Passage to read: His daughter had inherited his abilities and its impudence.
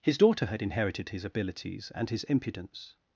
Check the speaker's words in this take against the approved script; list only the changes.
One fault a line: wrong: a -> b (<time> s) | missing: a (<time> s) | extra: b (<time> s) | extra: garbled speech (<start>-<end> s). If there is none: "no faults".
wrong: its -> his (2.1 s)